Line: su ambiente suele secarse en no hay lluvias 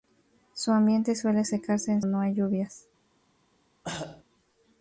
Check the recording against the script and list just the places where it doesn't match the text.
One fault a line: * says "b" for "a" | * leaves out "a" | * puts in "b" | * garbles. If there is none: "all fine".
all fine